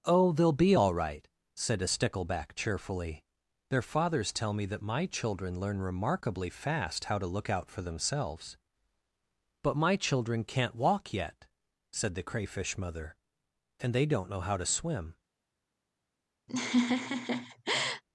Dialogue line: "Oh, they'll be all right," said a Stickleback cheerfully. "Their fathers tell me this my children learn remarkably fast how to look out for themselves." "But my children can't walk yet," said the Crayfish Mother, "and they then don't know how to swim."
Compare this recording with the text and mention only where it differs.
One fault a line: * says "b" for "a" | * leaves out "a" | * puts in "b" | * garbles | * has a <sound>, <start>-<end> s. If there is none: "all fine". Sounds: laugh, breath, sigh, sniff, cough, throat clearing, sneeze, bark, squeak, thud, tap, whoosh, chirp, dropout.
* says "that" for "this"
* leaves out "then"
* has a laugh, 16.5-18.0 s